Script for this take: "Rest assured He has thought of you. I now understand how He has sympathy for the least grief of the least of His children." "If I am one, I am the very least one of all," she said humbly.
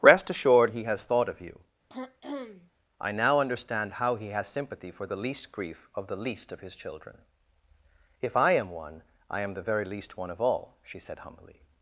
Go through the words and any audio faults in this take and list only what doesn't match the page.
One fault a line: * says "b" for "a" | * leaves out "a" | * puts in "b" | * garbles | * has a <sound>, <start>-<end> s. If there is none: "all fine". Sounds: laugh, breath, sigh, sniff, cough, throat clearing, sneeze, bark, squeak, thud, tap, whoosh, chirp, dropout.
* has a throat clearing, 1.9-2.7 s